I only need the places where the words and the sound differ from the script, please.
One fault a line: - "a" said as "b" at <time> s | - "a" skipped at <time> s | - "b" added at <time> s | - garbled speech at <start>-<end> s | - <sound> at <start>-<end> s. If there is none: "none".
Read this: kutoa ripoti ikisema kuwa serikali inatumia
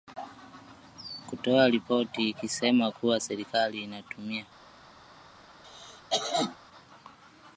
- cough at 5.6-6.6 s